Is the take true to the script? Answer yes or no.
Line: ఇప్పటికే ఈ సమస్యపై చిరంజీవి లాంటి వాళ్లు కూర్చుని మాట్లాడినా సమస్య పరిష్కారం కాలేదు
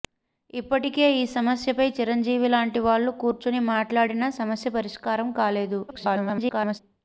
no